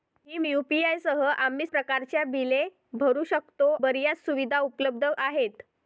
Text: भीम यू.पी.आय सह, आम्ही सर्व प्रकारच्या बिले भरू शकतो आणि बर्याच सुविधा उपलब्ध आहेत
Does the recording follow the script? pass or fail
fail